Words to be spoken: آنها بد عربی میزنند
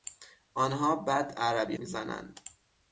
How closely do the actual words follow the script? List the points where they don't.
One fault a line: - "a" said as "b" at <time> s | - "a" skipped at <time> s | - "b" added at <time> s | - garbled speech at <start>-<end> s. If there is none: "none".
none